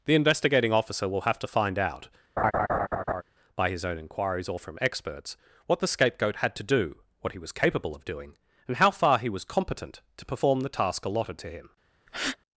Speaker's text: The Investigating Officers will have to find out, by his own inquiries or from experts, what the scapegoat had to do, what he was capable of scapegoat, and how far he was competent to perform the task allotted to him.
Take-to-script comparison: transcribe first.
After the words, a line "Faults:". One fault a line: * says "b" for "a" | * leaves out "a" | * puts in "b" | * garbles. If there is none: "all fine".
The Investigating Officer will have to find out, by his own inquiries or from experts, what the scapegoat had to do, what he was capable of doing, and how far he was competent to perform the task allotted to him.
Faults:
* says "Officer" for "Officers"
* says "doing" for "scapegoat"